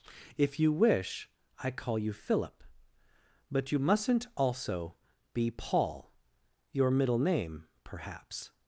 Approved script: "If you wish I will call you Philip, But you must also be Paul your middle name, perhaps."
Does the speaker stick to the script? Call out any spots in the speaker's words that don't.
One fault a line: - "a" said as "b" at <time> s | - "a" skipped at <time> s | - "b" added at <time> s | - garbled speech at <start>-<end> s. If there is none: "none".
- "will" skipped at 1.7 s
- "must" said as "mustn't" at 3.8 s